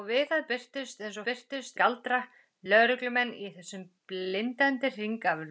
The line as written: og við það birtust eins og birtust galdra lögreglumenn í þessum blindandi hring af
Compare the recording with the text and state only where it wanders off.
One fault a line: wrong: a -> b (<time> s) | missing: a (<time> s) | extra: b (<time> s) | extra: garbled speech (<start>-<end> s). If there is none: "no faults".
no faults